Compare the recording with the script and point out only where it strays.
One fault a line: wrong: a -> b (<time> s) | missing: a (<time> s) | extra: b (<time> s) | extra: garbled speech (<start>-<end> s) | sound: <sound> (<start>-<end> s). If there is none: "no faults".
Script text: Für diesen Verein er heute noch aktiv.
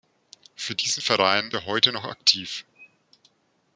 no faults